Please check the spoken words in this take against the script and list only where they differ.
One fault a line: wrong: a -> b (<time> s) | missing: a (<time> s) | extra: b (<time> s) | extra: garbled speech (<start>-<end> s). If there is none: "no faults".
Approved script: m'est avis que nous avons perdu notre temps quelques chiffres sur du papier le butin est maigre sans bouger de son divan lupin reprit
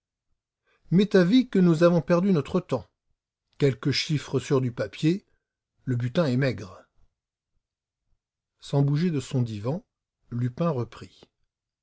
no faults